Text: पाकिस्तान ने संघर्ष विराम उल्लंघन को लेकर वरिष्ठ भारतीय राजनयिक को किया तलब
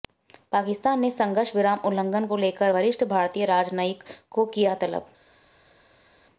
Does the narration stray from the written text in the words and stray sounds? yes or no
no